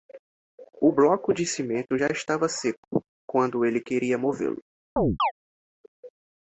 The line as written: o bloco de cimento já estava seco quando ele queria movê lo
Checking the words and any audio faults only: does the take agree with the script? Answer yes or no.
no